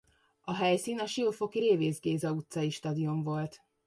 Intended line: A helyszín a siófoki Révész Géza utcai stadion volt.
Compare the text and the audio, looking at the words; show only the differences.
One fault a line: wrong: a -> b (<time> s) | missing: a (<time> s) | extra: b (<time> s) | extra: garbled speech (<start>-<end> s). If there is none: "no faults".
no faults